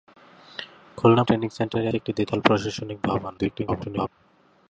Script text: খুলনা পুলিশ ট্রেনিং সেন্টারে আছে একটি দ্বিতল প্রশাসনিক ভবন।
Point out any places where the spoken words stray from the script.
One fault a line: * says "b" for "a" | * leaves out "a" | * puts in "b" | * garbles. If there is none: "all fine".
* leaves out "পুলিশ"
* leaves out "আছে"
* garbles